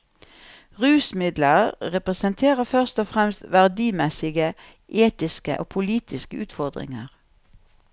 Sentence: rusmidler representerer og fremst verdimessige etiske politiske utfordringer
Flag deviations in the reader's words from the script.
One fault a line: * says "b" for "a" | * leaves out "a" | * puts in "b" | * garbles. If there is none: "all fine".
* puts in "først"
* puts in "og"